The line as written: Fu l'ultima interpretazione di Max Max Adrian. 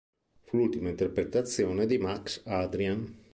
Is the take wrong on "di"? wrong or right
right